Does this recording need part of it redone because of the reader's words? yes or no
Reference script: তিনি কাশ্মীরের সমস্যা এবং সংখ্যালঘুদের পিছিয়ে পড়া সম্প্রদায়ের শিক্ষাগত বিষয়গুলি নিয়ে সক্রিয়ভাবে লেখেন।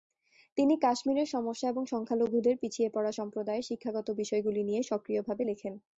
no